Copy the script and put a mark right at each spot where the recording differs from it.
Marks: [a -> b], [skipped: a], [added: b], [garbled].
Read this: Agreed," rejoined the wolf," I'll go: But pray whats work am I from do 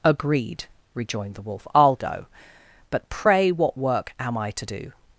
Agreed," rejoined the wolf," I'll go: But pray [whats -> what] work am I [from -> to] do